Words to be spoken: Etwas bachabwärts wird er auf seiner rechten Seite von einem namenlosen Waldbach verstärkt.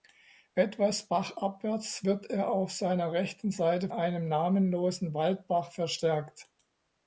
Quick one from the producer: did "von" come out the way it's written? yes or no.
no